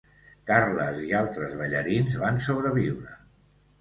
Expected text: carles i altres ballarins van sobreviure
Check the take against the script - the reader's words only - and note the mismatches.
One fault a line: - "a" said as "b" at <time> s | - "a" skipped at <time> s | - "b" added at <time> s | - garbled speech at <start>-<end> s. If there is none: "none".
none